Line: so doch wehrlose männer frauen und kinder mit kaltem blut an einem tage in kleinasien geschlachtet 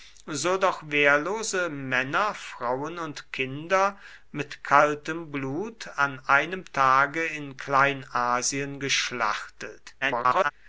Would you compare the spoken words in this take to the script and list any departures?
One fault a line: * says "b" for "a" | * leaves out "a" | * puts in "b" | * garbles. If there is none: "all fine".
* garbles